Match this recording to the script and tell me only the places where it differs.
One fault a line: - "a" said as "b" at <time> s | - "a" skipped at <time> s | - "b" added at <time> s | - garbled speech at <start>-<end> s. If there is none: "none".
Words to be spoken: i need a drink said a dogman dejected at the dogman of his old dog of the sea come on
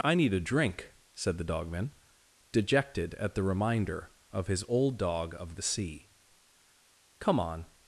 - "a" said as "the" at 1.4 s
- "dogman" said as "reminder" at 3.4 s